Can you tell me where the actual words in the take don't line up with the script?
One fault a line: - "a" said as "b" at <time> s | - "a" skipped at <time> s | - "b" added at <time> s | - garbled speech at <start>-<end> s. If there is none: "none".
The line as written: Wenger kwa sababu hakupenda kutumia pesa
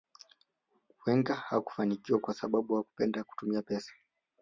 - "hakufanikiwa" added at 1.4 s